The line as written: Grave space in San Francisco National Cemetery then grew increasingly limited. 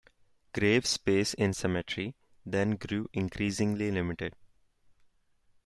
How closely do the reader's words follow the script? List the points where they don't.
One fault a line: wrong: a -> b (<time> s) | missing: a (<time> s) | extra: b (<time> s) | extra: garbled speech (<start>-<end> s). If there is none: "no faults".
missing: San Francisco National (1.5 s)